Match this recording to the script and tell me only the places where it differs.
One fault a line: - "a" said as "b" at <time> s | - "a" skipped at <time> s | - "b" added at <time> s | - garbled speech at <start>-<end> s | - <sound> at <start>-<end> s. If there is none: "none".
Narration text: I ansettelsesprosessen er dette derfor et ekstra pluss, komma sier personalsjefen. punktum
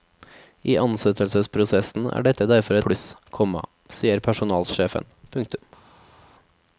- "et ekstra" skipped at 2.8 s